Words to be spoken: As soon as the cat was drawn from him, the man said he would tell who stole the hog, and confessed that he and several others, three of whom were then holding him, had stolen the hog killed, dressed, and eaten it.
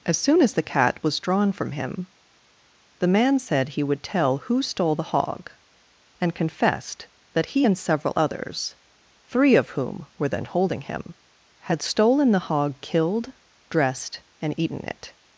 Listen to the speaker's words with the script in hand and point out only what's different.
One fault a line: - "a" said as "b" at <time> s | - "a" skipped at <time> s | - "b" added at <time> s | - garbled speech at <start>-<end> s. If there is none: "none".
none